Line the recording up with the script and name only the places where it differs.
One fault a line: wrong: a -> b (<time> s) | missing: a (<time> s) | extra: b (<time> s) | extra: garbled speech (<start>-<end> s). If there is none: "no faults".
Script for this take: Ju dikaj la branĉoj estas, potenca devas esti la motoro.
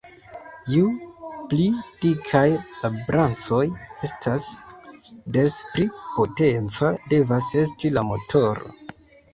extra: pli (1.5 s)
extra: des pli (5.4 s)